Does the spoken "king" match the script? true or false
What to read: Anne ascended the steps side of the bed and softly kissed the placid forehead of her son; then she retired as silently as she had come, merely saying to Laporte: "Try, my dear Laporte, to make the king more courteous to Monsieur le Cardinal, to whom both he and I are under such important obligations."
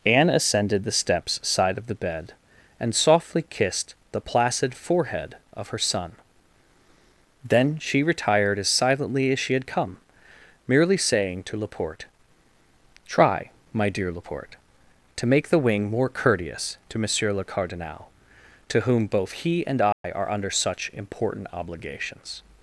false